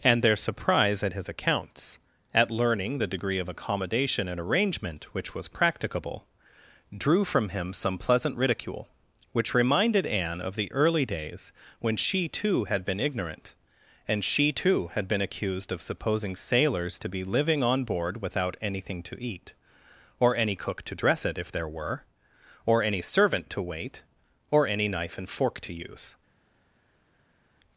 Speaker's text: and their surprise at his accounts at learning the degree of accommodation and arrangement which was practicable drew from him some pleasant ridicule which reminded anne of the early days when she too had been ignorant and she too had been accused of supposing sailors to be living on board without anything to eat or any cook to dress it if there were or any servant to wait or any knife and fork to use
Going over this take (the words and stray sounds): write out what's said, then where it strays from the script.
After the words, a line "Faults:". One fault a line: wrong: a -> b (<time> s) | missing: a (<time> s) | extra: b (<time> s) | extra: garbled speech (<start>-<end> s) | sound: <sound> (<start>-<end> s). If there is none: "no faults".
and their surprise at his accounts at learning the degree of accommodation and arrangement which was practicable drew from him some pleasant ridicule which reminded anne of the early days when she too had been ignorant and she too had been accused of supposing sailors to be living on board without anything to eat or any cook to dress it if there were or any servant to wait or any knife and fork to use
Faults:
no faults